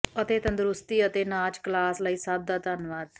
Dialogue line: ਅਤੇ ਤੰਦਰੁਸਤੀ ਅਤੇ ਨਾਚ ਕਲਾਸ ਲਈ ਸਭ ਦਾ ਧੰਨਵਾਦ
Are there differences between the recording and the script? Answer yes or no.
no